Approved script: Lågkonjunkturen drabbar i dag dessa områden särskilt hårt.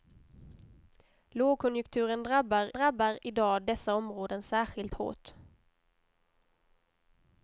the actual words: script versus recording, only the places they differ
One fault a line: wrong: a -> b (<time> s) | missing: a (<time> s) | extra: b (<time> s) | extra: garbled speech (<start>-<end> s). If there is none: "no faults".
extra: drabbar (2.7 s)